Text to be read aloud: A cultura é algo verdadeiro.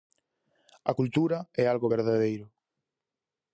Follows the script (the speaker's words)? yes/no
yes